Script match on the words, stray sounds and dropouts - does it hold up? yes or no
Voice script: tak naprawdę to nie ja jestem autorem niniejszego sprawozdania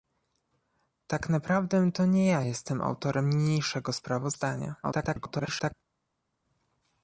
no